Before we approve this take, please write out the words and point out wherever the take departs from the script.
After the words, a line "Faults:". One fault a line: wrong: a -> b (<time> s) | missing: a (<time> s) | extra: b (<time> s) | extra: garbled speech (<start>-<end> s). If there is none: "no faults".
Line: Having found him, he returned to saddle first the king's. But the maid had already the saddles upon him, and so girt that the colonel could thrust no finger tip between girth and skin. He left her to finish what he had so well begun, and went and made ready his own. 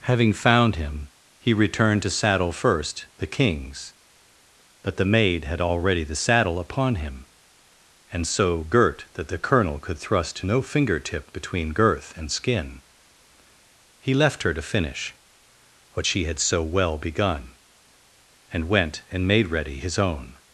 Having found him, he returned to saddle first the king's. But the maid had already the saddle upon him, and so girt that the colonel could thrust no finger tip between girth and skin. He left her to finish what she had so well begun, and went and made ready his own.
Faults:
wrong: saddles -> saddle (6.2 s)
wrong: he -> she (16.0 s)